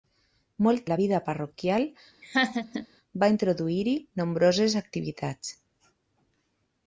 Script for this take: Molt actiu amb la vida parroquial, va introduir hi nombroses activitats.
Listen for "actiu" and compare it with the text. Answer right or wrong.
wrong